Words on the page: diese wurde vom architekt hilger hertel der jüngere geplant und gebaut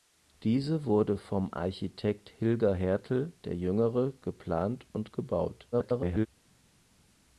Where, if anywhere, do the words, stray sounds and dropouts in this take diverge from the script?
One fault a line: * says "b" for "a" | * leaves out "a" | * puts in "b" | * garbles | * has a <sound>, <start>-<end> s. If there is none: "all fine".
* garbles